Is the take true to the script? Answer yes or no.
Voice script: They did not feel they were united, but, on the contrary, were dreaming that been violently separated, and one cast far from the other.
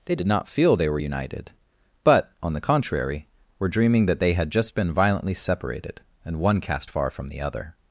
no